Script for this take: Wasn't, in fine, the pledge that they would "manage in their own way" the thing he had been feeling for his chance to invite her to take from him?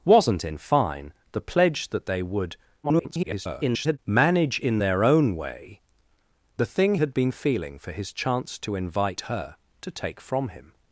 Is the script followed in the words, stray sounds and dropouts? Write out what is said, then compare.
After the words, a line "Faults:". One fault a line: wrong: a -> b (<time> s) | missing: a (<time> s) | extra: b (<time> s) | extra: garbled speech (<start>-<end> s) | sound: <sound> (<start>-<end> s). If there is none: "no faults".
Wasn't, in fine, the pledge that they would [garbled] "manage in their own way" the thing had been feeling for his chance to invite her to take from him?
Faults:
extra: garbled speech (2.8-4.0 s)
missing: he (7.0 s)